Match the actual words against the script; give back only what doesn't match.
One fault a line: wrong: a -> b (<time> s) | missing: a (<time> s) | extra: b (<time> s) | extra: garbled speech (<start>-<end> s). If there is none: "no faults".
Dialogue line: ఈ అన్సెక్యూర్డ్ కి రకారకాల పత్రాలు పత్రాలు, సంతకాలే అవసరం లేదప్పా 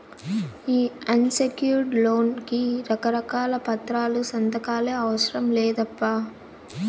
extra: లోన్ (2.0 s)
missing: పత్రాలు (4.2 s)